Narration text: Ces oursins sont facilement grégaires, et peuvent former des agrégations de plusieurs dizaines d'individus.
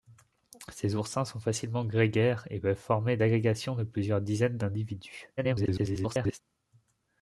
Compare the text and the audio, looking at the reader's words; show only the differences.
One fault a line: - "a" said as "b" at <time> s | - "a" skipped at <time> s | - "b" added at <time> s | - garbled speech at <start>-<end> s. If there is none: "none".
- "des" skipped at 3.2 s
- garbled speech at 5.4-6.4 s